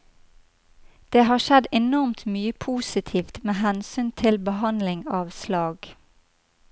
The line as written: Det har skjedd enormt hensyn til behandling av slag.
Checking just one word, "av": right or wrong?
right